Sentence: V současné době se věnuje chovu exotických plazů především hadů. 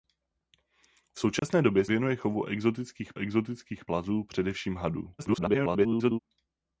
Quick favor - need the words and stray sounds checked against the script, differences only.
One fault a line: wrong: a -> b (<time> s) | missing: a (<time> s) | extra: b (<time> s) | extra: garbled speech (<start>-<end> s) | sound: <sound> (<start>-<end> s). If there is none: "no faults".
sound: dropout (1.4-1.4 s)
missing: se (1.9 s)
extra: exotických (3.1 s)
extra: garbled speech (5.2-6.2 s)